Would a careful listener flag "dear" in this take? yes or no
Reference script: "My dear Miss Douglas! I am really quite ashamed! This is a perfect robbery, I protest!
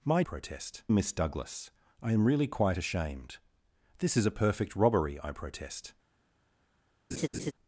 yes